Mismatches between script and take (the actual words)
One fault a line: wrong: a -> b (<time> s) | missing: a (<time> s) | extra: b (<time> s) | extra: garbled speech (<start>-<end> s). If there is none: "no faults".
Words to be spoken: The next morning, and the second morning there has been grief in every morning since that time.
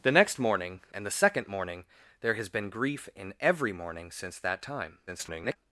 extra: garbled speech (5.1-5.6 s)